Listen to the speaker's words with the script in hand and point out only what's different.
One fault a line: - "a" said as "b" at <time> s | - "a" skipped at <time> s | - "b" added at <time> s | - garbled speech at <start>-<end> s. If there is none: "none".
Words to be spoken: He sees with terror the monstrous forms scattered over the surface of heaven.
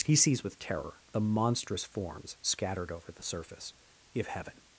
- "of" said as "if" at 4.1 s